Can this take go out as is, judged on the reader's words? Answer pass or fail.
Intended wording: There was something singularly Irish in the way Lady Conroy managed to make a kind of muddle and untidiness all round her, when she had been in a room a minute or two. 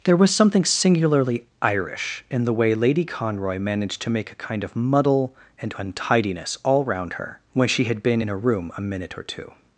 pass